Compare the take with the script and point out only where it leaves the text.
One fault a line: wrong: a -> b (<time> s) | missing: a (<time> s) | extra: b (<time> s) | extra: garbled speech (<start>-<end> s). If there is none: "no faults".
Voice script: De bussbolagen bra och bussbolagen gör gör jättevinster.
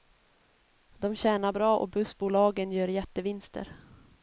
wrong: bussbolagen -> tjänar (1.1 s)
missing: gör (2.9 s)